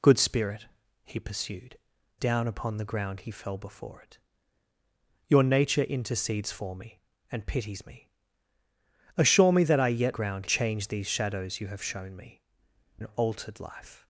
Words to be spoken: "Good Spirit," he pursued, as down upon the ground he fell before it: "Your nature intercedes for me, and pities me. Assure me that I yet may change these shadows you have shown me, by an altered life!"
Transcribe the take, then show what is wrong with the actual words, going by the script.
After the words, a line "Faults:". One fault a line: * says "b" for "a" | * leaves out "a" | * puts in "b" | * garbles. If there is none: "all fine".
"Good Spirit," he pursued, down upon the ground he fell before it: "Your nature intercedes for me, and pities me. Assure me that I yet ground change these shadows you have shown me, an altered life!"
Faults:
* leaves out "as"
* says "ground" for "may"
* leaves out "by"